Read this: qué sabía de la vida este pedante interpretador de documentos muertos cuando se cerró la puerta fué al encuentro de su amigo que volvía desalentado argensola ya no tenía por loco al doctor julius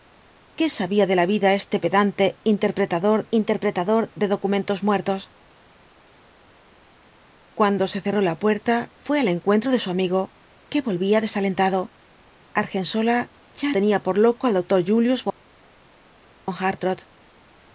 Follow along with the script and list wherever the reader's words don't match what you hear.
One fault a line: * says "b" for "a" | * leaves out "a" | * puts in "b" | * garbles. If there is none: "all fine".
* puts in "interpretador"
* leaves out "no"